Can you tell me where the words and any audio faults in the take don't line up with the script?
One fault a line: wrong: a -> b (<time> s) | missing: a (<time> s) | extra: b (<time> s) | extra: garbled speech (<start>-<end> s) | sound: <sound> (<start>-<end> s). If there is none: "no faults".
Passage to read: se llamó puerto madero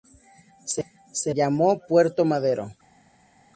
no faults